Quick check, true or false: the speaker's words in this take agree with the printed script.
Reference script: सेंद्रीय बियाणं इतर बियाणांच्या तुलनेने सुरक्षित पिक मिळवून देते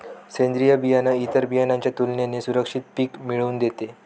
true